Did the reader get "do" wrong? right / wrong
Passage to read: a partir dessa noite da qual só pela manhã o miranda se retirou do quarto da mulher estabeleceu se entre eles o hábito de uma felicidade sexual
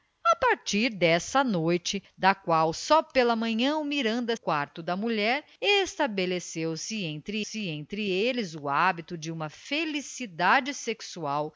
wrong